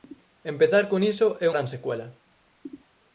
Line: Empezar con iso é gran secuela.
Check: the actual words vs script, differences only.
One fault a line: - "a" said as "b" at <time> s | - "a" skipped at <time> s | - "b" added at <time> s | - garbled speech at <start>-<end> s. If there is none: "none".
none